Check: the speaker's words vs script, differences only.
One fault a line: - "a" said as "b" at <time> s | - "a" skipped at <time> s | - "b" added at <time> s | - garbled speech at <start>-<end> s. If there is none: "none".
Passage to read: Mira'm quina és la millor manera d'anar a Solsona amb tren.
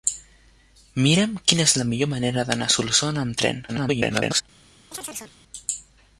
- garbled speech at 3.7-4.4 s